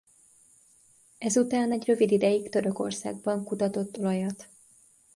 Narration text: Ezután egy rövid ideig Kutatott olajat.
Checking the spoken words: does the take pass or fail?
fail